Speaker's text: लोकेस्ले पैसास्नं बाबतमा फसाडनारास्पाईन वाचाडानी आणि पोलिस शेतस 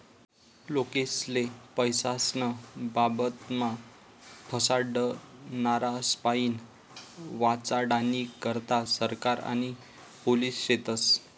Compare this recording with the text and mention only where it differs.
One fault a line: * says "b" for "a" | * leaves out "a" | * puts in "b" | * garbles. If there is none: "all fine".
* puts in "करता सरकार"